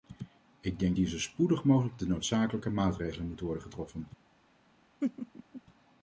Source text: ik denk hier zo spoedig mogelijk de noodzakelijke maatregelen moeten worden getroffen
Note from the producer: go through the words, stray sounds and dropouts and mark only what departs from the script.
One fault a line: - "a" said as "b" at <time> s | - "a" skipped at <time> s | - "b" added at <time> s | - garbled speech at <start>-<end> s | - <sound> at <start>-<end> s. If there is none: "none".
- laugh at 5.0-5.6 s